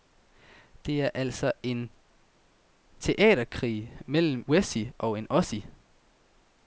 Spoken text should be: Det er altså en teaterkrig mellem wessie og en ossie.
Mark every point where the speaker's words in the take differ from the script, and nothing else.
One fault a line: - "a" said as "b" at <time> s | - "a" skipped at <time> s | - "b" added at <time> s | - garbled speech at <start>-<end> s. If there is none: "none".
none